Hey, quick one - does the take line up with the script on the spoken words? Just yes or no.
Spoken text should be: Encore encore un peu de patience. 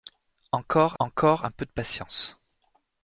yes